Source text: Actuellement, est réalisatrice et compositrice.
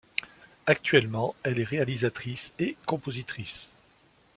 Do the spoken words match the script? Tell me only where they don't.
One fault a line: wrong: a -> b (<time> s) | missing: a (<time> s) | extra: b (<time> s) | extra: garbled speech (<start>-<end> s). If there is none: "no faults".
extra: elle (1.4 s)